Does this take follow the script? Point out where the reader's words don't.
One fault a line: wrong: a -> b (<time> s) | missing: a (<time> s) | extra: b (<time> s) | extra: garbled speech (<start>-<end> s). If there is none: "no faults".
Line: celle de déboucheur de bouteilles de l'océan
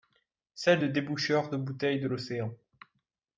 no faults